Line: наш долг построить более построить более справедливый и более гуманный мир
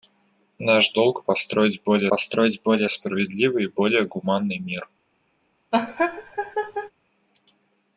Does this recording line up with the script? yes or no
yes